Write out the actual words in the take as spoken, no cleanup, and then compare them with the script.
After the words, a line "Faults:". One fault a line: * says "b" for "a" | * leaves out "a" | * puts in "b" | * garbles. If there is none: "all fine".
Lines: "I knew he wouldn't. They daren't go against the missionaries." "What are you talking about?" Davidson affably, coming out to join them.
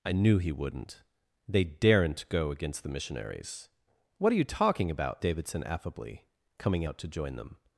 "I knew he wouldn't. They daren't go against the missionaries." "What are you talking about?" Davidson affably, coming out to join them.
Faults:
all fine